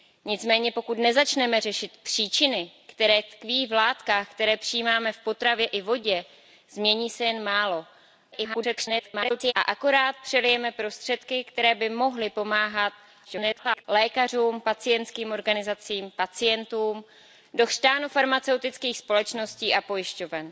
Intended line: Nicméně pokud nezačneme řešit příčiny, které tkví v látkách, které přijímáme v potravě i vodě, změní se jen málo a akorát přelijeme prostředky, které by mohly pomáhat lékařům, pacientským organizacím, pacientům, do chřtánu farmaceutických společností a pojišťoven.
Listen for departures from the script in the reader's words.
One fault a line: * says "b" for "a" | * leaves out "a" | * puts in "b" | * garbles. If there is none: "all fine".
* garbles
* garbles